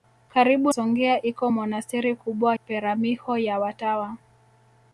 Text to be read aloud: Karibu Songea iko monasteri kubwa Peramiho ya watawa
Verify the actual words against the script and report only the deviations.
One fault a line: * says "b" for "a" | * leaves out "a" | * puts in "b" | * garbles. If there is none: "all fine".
all fine